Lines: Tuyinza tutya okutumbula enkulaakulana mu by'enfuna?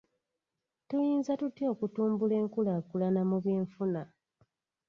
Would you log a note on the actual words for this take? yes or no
no